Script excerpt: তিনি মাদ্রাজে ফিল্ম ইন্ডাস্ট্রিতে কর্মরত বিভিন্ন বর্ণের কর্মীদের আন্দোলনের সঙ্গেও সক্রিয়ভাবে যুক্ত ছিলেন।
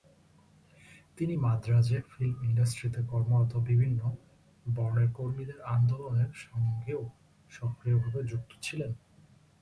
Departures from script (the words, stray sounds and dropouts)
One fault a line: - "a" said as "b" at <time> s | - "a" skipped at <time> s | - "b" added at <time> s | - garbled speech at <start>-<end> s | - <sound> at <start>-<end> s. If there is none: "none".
none